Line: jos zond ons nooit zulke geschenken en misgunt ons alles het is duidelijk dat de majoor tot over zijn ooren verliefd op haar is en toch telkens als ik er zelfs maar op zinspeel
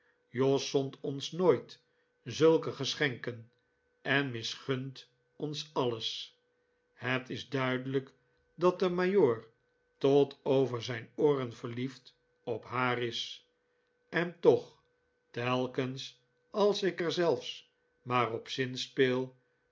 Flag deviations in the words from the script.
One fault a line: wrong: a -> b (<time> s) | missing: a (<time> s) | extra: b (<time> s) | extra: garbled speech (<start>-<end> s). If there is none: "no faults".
no faults